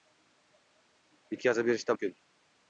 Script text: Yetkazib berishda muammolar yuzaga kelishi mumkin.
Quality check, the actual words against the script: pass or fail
fail